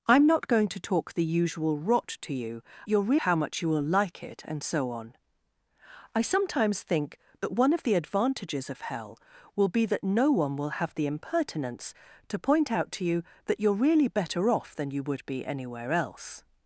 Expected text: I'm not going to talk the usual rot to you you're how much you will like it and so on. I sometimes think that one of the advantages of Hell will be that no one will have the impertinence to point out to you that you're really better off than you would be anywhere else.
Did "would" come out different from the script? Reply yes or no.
no